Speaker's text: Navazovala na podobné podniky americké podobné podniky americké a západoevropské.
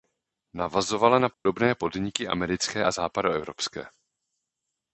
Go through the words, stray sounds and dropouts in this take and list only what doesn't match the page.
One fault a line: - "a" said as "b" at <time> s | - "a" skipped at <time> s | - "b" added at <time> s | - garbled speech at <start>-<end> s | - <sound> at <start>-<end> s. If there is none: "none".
- dropout at 1.3-1.5 s
- "podobné podniky americké" skipped at 2.9 s